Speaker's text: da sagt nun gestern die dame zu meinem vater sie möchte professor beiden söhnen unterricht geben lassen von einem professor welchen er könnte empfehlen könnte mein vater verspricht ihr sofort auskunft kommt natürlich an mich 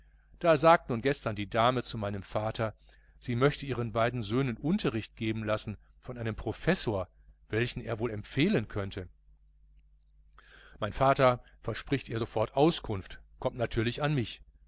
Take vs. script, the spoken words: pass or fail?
fail